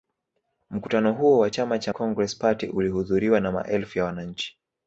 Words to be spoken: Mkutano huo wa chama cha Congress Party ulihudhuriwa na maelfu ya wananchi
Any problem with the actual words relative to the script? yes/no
no